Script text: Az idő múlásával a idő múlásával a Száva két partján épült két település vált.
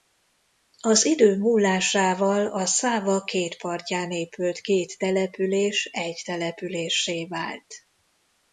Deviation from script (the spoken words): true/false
true